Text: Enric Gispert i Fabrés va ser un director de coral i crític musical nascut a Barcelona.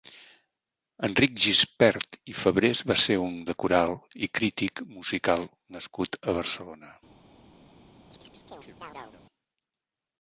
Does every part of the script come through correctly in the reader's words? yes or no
no